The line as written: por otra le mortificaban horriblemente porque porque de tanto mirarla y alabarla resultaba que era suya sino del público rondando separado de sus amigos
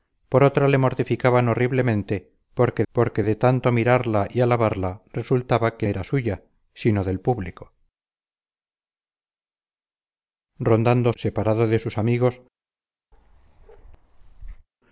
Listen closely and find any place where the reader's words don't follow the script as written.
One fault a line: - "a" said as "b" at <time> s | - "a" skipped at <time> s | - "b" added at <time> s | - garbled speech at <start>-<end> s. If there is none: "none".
none